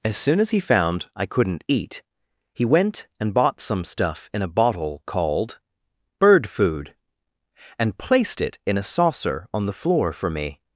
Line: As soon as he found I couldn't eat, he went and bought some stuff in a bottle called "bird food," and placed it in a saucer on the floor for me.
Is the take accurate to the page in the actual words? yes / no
yes